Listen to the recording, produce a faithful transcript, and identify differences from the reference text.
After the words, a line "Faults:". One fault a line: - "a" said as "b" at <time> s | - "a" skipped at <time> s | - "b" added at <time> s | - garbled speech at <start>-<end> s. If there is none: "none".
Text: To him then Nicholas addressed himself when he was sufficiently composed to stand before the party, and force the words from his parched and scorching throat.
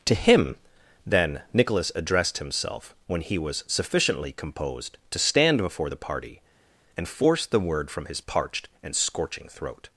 To him then Nicholas addressed himself when he was sufficiently composed to stand before the party, and force the word from his parched and scorching throat.
Faults:
- "words" said as "word" at 7.6 s